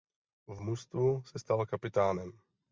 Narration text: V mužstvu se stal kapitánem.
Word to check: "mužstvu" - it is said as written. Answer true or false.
true